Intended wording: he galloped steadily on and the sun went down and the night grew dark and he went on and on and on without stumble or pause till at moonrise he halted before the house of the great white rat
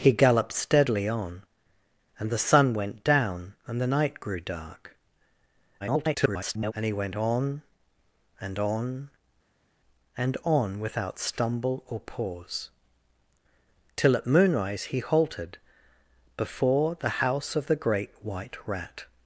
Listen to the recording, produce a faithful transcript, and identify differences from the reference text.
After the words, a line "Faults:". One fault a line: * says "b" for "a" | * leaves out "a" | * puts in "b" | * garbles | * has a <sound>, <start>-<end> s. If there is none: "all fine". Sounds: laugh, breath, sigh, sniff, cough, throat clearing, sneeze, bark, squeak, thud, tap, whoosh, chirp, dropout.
he galloped steadily on and the sun went down and the night grew dark [garbled] and he went on and on and on without stumble or pause till at moonrise he halted before the house of the great white rat
Faults:
* garbles